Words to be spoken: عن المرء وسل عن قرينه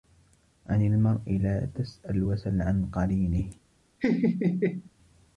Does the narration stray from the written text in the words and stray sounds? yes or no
yes